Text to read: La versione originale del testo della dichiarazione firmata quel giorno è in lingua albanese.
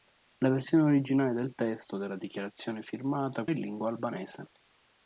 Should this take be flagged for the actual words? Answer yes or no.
yes